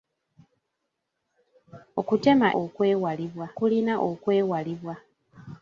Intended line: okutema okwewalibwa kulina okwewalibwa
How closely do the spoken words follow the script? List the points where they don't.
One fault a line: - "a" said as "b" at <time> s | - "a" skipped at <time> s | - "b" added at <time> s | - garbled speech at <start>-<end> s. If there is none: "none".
none